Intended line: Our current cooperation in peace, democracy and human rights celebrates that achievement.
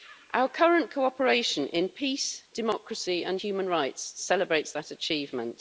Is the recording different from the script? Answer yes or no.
no